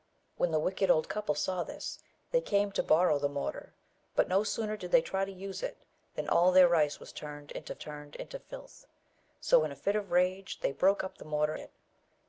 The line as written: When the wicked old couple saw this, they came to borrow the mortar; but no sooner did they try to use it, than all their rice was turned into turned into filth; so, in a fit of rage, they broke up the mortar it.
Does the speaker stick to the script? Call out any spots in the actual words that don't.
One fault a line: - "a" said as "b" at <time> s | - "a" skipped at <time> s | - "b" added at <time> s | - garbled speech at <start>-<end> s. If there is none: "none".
none